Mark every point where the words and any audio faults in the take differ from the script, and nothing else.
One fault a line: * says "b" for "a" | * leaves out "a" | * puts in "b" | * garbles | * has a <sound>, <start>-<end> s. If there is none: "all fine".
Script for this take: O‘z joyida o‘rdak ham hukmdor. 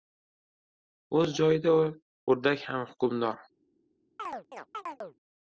* has a chirp, 4.2-5.2 s